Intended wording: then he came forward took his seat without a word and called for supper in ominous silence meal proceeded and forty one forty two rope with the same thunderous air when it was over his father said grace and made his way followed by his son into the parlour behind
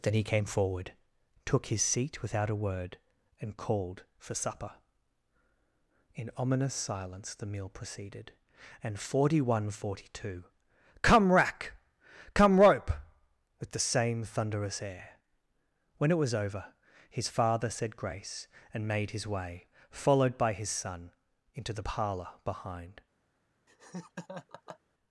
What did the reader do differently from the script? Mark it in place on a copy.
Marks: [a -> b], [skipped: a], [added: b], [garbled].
then he came forward took his seat without a word and called for supper in ominous silence [added: the] meal proceeded and forty one forty two [added: come rack come] rope with the same thunderous air when it was over his father said grace and made his way followed by his son into the parlour behind